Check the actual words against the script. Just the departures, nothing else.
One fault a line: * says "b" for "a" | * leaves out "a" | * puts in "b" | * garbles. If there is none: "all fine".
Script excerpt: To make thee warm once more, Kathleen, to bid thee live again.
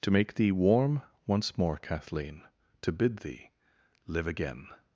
all fine